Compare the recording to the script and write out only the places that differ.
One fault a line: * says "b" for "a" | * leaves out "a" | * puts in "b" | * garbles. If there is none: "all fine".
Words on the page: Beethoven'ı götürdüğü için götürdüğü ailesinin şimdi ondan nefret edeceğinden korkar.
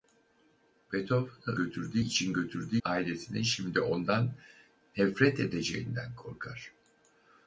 all fine